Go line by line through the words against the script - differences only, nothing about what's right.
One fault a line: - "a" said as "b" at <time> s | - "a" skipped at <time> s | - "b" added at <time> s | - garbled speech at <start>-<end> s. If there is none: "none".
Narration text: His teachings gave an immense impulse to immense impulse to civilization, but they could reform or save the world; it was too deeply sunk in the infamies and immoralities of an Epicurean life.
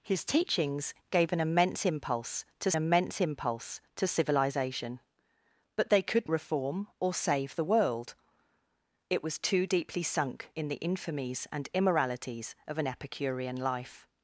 none